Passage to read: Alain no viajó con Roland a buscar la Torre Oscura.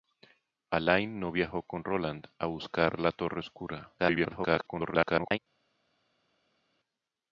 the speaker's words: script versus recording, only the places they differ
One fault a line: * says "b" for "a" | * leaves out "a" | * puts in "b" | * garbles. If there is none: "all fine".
* garbles